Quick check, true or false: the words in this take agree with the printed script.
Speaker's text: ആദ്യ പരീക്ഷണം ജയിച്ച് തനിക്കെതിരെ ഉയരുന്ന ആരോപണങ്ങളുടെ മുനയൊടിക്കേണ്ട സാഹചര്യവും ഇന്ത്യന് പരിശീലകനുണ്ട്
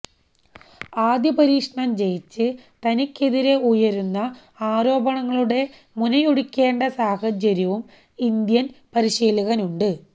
true